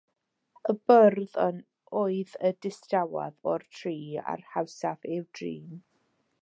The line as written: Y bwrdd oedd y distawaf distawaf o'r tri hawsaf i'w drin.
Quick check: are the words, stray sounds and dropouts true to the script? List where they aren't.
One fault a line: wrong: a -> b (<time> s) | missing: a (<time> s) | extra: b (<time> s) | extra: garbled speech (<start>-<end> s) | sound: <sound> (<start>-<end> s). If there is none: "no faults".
missing: distawaf (3.5 s)
extra: a'r (4.4 s)